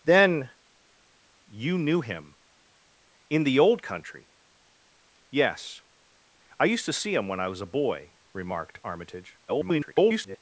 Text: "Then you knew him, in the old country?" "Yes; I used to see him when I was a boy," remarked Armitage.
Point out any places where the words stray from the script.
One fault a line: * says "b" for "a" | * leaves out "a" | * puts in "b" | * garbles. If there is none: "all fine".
* garbles